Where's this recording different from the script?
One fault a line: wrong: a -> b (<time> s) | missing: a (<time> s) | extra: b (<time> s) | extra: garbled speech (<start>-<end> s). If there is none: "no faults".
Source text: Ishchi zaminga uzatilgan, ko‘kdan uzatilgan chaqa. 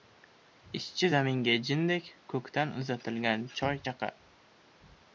wrong: uzatilgan -> jindek (1.7 s)
extra: choy (3.6 s)